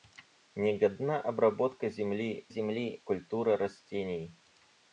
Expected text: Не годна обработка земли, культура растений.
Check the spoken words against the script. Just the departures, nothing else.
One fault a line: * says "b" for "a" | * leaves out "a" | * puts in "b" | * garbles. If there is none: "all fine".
* puts in "земли"